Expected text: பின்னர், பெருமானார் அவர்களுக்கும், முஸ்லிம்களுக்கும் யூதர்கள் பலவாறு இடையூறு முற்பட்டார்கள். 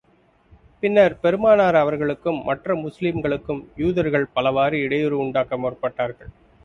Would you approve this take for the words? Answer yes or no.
no